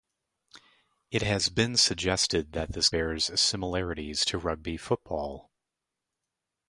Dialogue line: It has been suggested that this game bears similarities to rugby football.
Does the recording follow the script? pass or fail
fail